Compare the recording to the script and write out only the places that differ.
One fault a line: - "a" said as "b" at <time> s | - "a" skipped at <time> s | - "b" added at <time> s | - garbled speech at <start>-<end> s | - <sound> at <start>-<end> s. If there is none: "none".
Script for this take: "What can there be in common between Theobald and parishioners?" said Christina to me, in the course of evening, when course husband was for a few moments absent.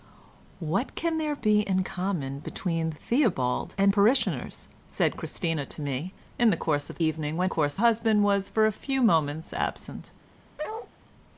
- bark at 10.6-10.9 s